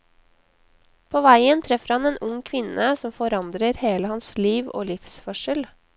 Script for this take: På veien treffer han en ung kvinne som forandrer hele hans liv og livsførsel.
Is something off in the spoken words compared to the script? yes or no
no